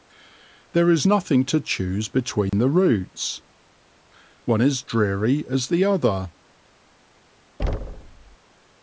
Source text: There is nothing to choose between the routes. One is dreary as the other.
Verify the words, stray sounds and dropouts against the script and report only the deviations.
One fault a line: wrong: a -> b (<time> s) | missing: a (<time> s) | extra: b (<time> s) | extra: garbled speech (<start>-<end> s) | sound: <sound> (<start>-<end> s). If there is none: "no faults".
sound: dropout (2.5-2.5 s)
sound: thud (7.6-8.4 s)